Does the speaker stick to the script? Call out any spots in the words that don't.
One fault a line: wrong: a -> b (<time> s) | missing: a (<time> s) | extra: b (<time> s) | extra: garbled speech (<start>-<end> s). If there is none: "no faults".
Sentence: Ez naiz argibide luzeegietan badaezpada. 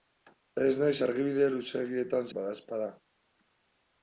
no faults